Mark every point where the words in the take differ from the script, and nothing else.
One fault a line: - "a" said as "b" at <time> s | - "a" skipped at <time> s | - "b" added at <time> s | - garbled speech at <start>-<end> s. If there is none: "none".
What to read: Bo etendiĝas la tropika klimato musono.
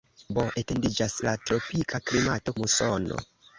none